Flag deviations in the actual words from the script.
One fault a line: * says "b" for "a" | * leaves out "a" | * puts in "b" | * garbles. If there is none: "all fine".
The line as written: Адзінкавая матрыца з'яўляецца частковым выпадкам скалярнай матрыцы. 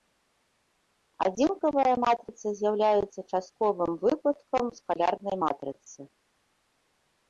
all fine